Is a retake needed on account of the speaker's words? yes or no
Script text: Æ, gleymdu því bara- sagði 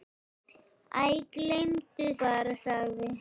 yes